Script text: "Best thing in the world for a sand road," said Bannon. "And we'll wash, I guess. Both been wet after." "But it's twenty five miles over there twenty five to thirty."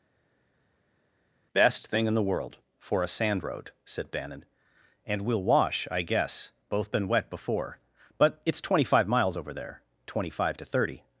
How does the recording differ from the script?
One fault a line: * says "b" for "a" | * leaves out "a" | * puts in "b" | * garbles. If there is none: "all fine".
* says "before" for "after"